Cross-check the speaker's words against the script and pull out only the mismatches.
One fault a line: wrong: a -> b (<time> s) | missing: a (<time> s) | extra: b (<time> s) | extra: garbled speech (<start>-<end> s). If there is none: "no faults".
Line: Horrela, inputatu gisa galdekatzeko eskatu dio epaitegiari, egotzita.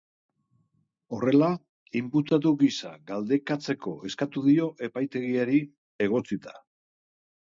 no faults